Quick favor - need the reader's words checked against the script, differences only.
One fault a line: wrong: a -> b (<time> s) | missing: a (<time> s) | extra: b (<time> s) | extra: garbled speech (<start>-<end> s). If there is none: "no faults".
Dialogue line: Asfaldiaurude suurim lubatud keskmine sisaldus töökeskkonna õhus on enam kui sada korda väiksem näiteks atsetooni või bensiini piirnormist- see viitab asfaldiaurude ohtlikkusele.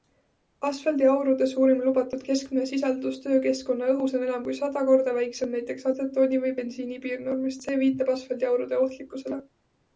no faults